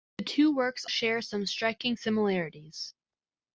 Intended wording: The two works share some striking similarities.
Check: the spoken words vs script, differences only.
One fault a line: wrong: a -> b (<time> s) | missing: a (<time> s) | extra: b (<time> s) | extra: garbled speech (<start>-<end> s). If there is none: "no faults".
no faults